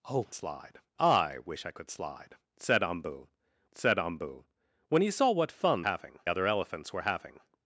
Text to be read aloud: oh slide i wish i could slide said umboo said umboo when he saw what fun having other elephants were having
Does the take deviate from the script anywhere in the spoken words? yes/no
no